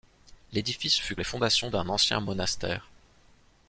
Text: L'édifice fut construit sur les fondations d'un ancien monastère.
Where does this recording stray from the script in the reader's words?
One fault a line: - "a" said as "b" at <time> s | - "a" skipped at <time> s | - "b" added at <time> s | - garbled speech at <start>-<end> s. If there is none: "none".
- "construit sur" skipped at 1.1 s